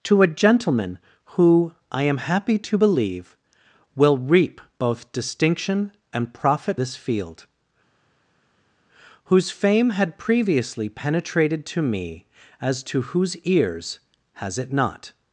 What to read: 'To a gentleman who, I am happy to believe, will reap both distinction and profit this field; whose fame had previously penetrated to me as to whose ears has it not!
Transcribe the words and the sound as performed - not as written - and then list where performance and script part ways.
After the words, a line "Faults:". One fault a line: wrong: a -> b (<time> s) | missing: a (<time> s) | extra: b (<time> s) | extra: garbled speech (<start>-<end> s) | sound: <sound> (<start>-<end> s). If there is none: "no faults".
'To a gentleman who, I am happy to believe, will reap both distinction and profit this field; whose fame had previously penetrated to me as to whose ears has it not!
Faults:
no faults